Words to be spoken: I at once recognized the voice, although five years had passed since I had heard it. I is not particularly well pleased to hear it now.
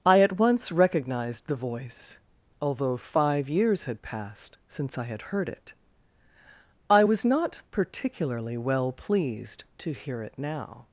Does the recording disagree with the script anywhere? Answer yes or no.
yes